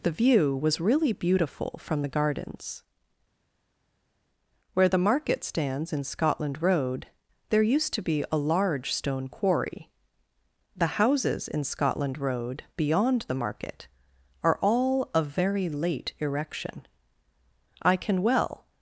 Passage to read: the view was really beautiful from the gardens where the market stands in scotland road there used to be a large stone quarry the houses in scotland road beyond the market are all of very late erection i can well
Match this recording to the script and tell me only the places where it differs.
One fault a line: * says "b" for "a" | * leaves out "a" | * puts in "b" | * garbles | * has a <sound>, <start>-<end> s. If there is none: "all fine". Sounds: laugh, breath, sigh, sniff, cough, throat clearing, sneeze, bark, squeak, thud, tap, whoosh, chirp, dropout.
all fine